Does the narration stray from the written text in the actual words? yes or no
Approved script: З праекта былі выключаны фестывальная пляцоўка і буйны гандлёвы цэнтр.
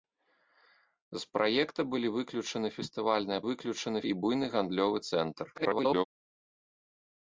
yes